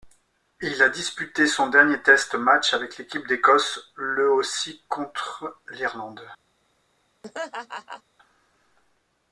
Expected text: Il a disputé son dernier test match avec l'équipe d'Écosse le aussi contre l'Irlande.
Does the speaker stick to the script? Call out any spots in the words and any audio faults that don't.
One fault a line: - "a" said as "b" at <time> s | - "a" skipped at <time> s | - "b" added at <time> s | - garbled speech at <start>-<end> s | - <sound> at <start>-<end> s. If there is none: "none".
- laugh at 7.2-8.0 s